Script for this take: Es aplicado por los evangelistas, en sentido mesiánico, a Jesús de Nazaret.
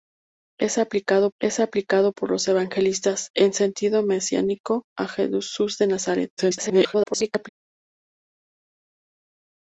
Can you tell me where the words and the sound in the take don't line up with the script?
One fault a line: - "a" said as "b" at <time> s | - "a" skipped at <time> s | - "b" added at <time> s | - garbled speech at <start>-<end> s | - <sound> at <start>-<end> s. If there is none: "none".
- "es aplicado" added at 1.4 s
- garbled speech at 6.4-7.5 s